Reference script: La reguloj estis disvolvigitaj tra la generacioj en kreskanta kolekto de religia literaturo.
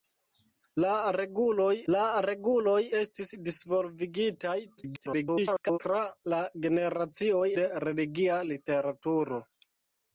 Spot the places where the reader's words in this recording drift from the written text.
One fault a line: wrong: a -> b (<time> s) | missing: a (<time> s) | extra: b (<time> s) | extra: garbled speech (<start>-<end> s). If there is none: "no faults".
extra: la reguloj (1.9 s)
extra: garbled speech (4.8-5.8 s)
missing: en kreskanta kolekto (7.4 s)